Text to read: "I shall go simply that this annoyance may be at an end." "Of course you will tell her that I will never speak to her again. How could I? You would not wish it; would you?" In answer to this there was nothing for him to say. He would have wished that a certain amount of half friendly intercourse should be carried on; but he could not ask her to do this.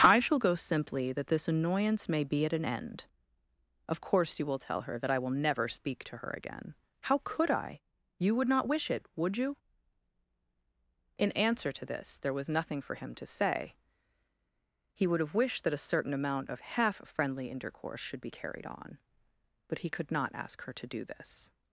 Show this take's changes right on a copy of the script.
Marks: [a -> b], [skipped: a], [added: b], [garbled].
"I shall go simply that this annoyance may be at an end." "Of course you will tell her that I will never speak to her again. How could I? You would not wish it; would you?" In answer to this there was nothing for him to say. He would have wished that a certain amount of half friendly intercourse should be carried on; but he could not ask her to do this.